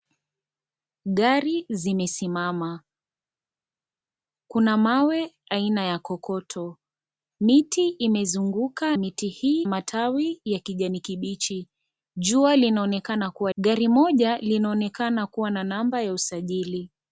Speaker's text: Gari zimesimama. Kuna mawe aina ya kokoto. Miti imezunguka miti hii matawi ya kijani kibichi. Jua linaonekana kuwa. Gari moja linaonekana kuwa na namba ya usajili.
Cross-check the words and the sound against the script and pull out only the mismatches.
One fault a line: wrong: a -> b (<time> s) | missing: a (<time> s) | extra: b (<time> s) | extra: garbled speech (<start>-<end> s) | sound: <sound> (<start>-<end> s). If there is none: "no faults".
no faults